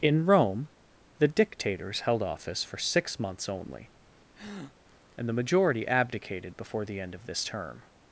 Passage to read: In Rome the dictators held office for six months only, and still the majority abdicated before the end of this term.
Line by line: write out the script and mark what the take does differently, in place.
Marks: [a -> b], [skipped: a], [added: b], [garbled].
In Rome the dictators held office for six months only, and [skipped: still] the majority abdicated before the end of this term.